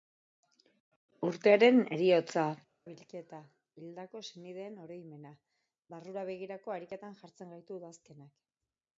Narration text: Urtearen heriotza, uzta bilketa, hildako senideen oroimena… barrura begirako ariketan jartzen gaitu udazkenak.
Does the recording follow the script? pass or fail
fail